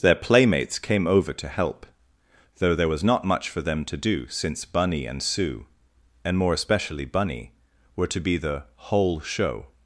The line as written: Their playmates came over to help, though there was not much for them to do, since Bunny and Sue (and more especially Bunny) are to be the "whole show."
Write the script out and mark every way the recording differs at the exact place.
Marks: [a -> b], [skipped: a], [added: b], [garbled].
Their playmates came over to help, though there was not much for them to do, since Bunny and Sue (and more especially Bunny) [are -> were] to be the "whole show."